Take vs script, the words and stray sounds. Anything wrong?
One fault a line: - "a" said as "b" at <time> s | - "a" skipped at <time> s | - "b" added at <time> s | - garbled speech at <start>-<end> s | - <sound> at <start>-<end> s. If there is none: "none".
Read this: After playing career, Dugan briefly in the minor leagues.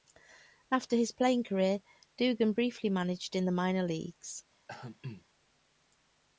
- "his" added at 0.9 s
- "managed" added at 2.9 s
- throat clearing at 4.7-5.3 s